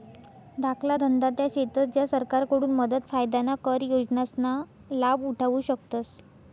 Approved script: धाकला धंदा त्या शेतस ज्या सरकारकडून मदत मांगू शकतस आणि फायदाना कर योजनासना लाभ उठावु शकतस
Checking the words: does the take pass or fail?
fail